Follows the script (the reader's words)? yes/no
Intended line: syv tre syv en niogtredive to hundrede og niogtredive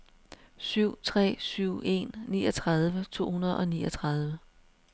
yes